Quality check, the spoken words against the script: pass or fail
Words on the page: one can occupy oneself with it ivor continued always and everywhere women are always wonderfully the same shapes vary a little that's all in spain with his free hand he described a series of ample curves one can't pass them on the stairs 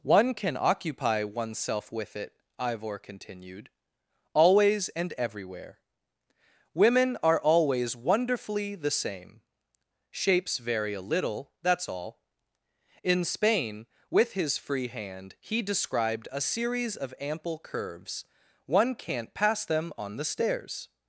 pass